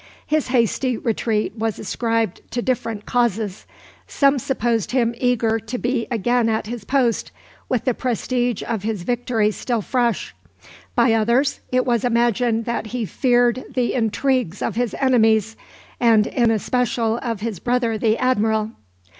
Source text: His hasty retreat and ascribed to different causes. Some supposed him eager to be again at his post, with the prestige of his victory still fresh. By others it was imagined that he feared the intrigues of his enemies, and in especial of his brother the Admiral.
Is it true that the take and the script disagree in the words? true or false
true